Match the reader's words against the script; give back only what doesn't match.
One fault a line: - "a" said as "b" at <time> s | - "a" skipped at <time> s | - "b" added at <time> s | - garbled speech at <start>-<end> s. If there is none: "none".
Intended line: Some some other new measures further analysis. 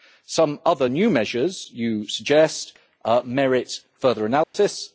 - "some" skipped at 0.6 s
- "you suggest merit" added at 1.7 s